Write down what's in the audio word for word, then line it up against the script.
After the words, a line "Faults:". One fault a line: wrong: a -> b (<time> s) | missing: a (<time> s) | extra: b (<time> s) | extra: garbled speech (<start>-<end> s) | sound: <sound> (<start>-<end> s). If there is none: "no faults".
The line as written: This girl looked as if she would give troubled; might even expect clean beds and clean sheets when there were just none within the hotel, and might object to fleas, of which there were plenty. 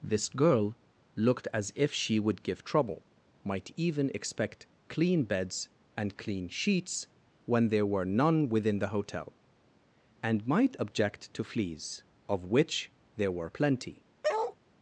This girl looked as if she would give trouble; might even expect clean beds and clean sheets when there were none within the hotel, and might object to fleas, of which there were plenty.
Faults:
wrong: troubled -> trouble (2.6 s)
missing: just (8.1 s)
sound: bark (14.2-14.6 s)